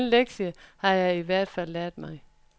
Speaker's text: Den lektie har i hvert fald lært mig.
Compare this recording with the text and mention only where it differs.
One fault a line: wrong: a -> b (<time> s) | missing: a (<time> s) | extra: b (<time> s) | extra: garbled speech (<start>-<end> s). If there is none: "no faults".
extra: jeg (0.9 s)